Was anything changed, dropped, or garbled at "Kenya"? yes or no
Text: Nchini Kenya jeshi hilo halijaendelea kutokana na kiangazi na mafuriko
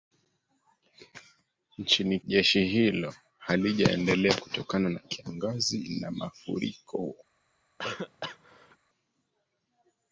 yes